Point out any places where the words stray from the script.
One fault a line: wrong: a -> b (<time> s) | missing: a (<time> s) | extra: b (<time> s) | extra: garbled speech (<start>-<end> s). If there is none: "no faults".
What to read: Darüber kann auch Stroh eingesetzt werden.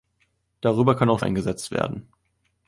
missing: Stroh (1.2 s)